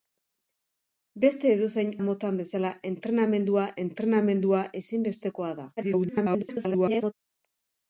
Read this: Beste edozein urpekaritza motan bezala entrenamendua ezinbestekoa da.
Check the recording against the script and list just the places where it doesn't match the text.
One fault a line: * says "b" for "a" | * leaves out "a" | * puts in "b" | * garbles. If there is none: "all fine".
* leaves out "urpekaritza"
* puts in "entrenamendua"
* garbles